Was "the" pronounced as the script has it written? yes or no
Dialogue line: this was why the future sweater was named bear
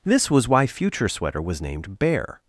no